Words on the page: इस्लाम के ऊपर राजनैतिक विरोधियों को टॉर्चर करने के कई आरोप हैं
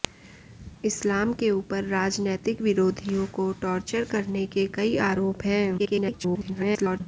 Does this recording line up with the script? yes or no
no